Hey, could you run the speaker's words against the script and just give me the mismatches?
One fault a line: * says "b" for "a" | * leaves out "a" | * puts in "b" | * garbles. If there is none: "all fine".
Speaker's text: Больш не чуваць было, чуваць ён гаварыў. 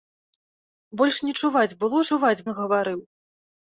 all fine